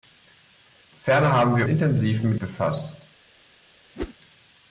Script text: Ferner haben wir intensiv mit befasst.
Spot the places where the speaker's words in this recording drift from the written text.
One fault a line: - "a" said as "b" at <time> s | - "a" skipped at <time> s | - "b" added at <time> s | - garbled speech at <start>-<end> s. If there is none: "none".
none